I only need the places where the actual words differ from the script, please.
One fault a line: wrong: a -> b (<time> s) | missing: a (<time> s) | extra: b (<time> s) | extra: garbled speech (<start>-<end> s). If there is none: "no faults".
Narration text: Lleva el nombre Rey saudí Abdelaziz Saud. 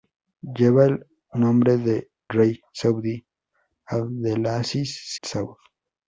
no faults